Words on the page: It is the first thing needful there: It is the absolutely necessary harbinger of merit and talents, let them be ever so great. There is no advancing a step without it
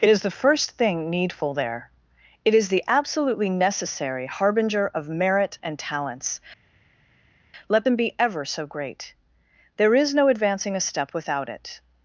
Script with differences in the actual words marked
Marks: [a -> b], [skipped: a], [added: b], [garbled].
It is the first thing needful there: It is the absolutely necessary harbinger of merit and talents, let them be ever so great. There is no advancing a step without it